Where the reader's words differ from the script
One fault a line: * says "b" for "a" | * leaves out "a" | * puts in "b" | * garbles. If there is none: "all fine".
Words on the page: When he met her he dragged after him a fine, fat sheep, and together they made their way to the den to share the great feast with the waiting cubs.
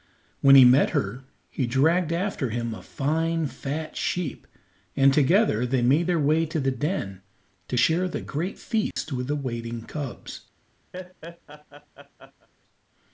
all fine